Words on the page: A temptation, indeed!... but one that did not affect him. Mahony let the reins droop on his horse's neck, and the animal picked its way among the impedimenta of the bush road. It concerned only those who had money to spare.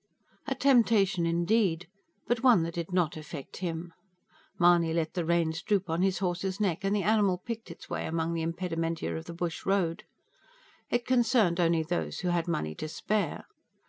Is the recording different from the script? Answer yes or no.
no